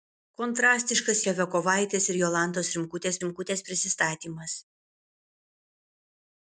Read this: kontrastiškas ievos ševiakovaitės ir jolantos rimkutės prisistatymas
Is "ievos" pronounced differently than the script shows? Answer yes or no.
yes